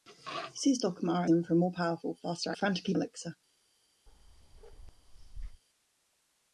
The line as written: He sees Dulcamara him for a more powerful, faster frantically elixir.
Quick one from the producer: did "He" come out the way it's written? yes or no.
yes